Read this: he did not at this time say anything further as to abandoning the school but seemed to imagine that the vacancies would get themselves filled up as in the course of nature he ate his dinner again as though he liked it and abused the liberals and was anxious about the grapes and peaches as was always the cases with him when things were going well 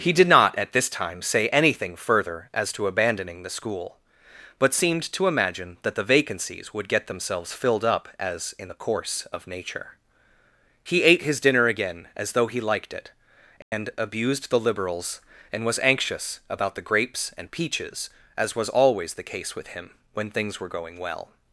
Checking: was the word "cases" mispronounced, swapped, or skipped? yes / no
yes